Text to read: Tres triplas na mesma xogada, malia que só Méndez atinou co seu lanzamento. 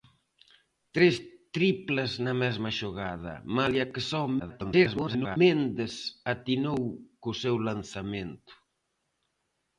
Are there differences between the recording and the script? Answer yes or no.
yes